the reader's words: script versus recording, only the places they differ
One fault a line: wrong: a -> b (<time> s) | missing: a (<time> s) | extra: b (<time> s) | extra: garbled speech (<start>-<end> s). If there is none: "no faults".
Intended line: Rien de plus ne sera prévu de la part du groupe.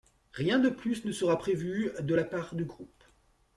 no faults